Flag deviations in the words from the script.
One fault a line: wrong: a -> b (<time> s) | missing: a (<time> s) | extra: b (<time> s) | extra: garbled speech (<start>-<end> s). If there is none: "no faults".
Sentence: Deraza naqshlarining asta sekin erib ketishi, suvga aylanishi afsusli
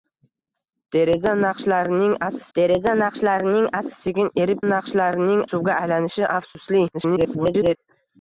extra: deraza naqshlarining asta (2.6 s)
wrong: ketishi -> naqshlarining (4.7 s)
extra: garbled speech (6.9-7.8 s)